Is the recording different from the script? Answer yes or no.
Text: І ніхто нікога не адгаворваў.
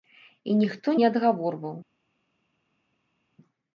yes